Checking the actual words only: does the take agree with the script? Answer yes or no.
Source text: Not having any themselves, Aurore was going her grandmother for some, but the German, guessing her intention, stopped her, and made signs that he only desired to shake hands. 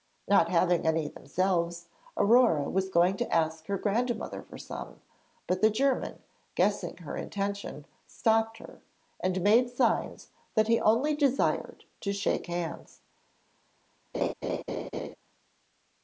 no